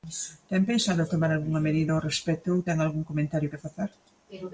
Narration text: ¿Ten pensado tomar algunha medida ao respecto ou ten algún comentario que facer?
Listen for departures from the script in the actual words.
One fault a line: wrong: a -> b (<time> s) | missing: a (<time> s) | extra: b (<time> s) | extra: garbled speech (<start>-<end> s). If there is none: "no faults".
no faults